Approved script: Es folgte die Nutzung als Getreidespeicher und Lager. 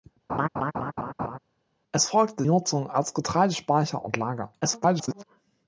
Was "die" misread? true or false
true